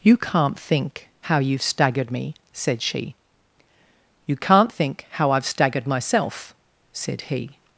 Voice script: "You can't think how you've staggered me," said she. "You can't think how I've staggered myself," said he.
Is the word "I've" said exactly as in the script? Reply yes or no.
yes